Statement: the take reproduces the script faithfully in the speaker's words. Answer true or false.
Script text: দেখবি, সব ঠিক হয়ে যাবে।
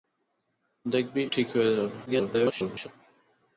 false